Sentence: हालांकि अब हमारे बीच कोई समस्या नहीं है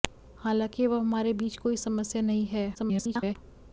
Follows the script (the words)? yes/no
no